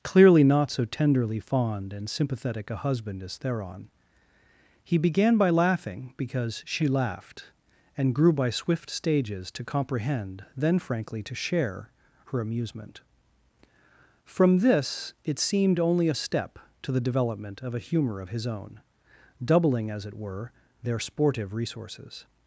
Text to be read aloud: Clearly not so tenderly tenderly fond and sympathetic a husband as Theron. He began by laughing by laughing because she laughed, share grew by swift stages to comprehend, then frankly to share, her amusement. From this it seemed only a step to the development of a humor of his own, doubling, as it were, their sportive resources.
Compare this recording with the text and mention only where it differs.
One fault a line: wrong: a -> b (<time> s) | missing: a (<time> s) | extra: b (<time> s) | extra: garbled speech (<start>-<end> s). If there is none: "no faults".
missing: tenderly (1.4 s)
missing: by laughing (6.1 s)
wrong: share -> and (8.0 s)